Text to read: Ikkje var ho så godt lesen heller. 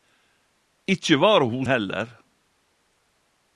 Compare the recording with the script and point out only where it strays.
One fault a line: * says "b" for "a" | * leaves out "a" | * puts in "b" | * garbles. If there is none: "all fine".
* leaves out "så godt lesen"